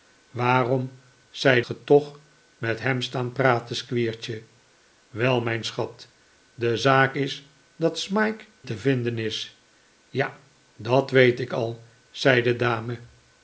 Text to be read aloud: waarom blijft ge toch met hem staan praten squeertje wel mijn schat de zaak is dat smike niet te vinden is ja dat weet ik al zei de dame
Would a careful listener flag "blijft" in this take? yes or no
yes